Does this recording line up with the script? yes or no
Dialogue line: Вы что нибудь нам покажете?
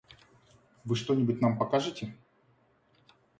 yes